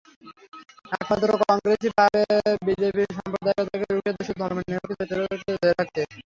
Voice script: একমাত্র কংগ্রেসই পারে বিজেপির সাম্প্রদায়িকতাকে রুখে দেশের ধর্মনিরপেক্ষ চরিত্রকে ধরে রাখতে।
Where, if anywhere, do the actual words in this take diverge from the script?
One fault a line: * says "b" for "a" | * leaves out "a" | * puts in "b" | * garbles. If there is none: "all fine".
all fine